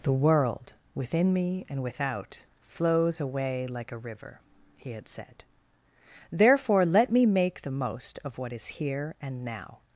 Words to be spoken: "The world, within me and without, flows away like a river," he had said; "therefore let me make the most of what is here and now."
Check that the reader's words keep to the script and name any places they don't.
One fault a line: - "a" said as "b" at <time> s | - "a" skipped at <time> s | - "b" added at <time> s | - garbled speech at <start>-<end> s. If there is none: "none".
none